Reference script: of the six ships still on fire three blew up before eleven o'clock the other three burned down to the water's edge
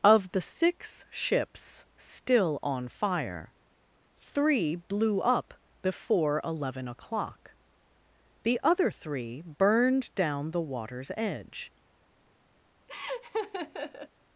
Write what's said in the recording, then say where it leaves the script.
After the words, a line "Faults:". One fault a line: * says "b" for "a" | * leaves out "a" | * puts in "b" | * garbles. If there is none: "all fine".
of the six ships still on fire three blew up before eleven o'clock the other three burned down the water's edge
Faults:
* leaves out "to"